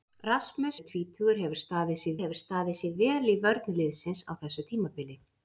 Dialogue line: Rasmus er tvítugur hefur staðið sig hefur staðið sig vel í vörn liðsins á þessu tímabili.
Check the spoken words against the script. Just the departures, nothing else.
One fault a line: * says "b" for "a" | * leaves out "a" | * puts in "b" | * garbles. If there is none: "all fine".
all fine